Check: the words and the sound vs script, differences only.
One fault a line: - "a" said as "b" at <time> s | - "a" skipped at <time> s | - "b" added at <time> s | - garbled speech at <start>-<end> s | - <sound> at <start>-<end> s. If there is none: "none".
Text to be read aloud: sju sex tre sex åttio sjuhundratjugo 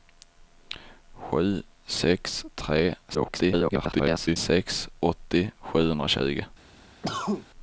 - garbled speech at 3.1-4.4 s
- cough at 7.0-7.5 s